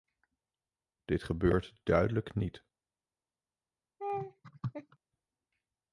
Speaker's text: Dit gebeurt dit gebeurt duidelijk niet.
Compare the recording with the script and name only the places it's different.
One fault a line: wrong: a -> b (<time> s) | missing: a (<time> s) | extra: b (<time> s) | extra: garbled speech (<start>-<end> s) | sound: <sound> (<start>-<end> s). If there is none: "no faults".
missing: dit gebeurt (1.8 s)
sound: laugh (4.0-5.0 s)